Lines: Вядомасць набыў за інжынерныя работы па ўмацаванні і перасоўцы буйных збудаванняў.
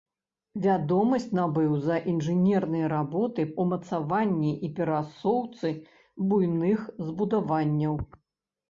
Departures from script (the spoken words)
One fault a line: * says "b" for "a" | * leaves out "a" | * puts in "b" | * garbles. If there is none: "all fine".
* leaves out "па"